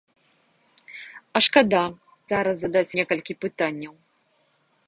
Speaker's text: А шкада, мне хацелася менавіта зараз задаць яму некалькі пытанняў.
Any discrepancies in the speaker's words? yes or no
yes